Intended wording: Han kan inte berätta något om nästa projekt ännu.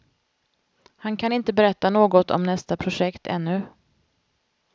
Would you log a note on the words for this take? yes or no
no